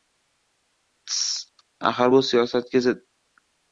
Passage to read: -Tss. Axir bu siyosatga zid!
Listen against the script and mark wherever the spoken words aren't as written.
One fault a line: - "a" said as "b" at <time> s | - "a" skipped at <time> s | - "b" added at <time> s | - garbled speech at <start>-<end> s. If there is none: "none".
none